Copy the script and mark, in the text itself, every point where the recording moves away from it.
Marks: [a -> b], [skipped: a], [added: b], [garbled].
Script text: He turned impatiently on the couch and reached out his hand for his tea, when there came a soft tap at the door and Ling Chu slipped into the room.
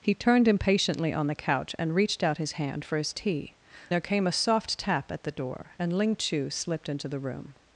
He turned impatiently on the couch and reached out his hand for his tea, [skipped: when] there came a soft tap at the door and Ling Chu slipped into the room.